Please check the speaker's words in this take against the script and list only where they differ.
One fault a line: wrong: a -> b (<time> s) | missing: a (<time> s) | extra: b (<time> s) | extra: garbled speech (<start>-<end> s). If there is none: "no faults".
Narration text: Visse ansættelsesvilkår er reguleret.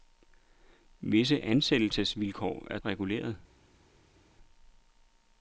no faults